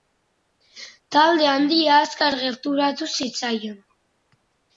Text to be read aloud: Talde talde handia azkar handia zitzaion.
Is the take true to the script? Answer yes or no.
no